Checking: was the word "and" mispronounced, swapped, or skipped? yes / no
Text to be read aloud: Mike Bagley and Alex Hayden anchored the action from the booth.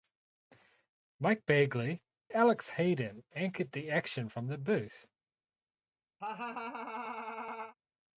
yes